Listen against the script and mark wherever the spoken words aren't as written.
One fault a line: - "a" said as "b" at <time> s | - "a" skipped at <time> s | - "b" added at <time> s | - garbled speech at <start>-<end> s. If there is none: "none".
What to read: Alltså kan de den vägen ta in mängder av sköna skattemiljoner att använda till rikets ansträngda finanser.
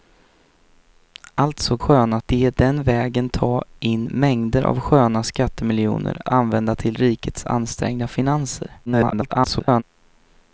- "kan" said as "sköna" at 1.8 s
- "att" skipped at 6.2 s
- garbled speech at 8.9-9.8 s